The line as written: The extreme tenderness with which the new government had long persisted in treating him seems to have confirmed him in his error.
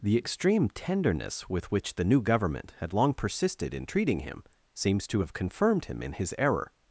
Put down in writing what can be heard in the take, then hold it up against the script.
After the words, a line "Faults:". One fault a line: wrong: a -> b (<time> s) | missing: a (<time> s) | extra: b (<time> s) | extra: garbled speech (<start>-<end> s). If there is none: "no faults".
The extreme tenderness with which the new government had long persisted in treating him seems to have confirmed him in his error.
Faults:
no faults